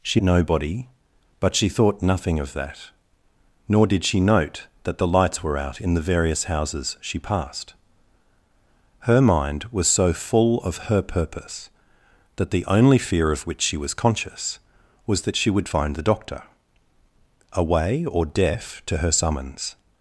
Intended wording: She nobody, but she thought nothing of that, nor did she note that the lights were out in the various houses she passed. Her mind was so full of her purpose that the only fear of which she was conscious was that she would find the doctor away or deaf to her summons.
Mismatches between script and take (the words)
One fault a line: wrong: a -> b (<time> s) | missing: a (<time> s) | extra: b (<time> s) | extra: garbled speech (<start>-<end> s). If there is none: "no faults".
no faults